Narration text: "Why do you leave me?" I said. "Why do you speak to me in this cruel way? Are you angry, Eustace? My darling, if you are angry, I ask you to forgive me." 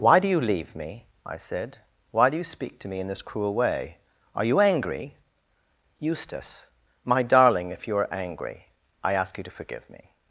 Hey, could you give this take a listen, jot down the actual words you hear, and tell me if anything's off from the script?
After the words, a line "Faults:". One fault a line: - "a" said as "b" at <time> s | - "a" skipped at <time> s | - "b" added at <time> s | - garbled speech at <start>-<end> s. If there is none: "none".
"Why do you leave me?" I said. "Why do you speak to me in this cruel way? Are you angry, Eustace? My darling, if you are angry, I ask you to forgive me."
Faults:
none